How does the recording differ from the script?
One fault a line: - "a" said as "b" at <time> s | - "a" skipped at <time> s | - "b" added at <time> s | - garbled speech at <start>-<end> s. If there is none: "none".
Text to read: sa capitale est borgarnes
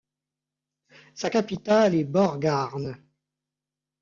none